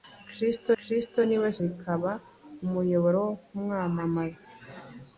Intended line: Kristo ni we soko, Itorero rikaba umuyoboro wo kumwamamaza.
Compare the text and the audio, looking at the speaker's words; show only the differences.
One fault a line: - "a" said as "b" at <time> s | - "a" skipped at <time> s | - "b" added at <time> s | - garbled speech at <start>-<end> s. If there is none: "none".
- "kristo" added at 0.8 s
- "soko Itorero" skipped at 1.5 s